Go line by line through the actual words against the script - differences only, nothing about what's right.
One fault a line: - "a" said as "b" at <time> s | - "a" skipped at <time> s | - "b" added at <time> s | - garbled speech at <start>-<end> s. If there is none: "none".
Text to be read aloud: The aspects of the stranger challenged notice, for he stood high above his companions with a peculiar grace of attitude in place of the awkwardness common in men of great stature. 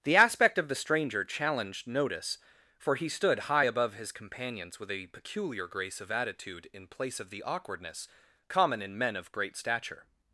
- "aspects" said as "aspect" at 0.1 s